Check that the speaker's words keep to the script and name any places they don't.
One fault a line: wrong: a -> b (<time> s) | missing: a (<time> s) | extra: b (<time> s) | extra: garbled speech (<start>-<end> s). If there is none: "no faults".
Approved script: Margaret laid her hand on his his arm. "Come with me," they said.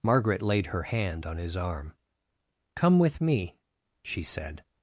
missing: his (1.6 s)
wrong: they -> she (4.0 s)